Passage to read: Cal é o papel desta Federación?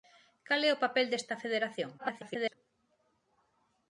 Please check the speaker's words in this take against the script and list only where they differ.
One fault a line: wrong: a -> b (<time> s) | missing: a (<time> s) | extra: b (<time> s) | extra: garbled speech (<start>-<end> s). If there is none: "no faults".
extra: garbled speech (2.0-2.5 s)